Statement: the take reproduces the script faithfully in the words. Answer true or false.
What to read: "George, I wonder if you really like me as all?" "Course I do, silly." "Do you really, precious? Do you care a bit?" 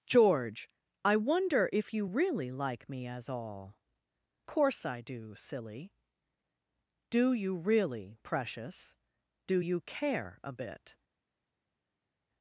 true